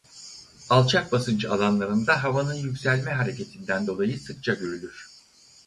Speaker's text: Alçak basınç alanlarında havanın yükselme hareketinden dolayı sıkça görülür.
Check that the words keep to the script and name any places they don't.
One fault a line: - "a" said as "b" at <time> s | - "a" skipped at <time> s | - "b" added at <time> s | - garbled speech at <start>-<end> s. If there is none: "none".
none